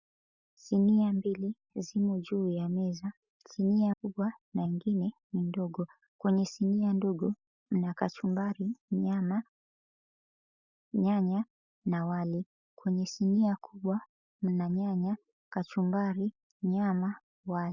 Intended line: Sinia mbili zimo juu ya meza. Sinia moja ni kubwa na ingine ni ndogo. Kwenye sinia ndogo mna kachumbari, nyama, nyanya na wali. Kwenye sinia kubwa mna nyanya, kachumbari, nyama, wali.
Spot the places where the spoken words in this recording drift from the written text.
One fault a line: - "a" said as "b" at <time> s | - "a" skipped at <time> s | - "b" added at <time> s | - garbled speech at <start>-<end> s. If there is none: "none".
- "moja ni" skipped at 4.0 s